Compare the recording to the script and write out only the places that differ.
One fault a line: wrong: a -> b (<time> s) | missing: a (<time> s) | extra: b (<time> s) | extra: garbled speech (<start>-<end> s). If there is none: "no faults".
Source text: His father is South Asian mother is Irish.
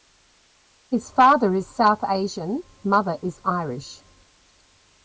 no faults